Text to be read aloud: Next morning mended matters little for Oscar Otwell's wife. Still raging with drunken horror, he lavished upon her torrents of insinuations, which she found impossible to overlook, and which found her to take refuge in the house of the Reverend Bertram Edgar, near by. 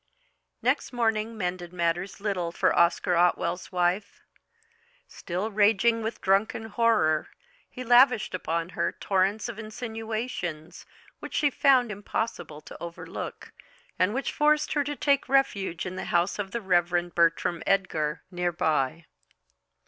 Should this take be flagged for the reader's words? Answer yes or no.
yes